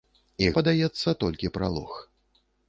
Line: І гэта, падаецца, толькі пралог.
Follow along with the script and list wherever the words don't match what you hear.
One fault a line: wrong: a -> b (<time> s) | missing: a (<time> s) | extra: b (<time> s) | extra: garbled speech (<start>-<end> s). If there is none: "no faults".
missing: гэта (0.5 s)